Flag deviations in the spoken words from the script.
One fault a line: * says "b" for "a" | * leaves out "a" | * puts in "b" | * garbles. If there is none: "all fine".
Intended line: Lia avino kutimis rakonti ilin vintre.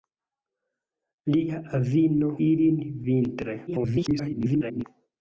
* leaves out "kutimis rakonti"
* garbles